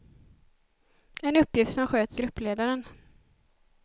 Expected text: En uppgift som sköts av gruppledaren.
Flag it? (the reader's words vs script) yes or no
yes